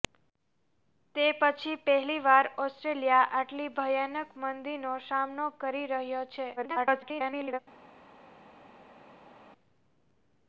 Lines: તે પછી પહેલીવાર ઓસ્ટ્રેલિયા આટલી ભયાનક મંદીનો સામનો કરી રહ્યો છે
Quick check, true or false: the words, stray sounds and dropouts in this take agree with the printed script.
false